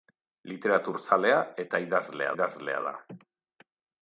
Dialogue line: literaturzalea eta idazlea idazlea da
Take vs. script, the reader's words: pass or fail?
pass